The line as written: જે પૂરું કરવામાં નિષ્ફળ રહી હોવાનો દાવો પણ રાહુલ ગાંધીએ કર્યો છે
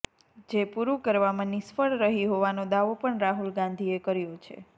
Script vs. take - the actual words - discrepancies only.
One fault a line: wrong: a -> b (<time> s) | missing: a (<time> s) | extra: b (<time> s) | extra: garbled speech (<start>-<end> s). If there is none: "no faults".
no faults